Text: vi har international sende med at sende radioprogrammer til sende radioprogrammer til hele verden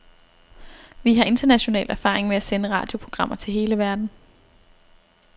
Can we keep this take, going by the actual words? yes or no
no